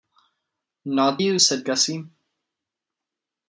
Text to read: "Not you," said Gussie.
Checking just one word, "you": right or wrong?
right